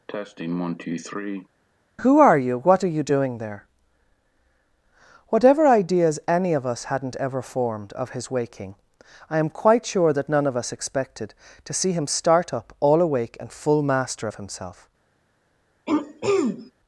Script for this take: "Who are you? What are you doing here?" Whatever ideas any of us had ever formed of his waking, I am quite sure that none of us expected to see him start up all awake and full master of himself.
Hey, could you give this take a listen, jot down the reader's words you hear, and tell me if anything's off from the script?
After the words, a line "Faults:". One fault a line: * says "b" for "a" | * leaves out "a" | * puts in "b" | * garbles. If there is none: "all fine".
"Who are you? What are you doing there?" Whatever ideas any of us hadn't ever formed of his waking, I am quite sure that none of us expected to see him start up all awake and full master of himself.
Faults:
* says "there" for "here"
* says "hadn't" for "had"